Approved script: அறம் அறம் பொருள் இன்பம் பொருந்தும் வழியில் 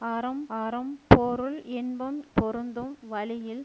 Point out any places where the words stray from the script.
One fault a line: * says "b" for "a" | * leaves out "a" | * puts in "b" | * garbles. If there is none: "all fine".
all fine